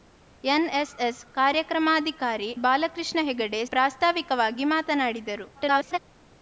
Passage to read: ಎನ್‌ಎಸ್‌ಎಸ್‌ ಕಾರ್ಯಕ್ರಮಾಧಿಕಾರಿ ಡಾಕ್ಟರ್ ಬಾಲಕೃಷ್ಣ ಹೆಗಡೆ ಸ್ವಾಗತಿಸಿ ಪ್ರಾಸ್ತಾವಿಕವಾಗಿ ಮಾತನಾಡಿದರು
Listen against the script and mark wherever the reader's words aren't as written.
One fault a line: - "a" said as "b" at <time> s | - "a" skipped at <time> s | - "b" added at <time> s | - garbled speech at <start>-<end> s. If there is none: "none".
- "ಡಾಕ್ಟರ್" skipped at 2.6 s
- "ಸ್ವಾಗತಿಸಿ" skipped at 3.7 s
- garbled speech at 5.5-6.0 s